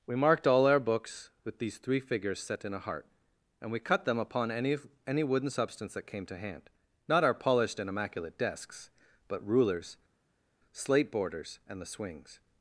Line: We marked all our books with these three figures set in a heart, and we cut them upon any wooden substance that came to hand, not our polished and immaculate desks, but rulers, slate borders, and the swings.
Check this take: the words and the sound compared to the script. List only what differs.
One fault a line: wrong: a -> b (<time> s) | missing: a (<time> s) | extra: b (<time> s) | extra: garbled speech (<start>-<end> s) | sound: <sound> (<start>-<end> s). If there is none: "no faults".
extra: any (5.0 s)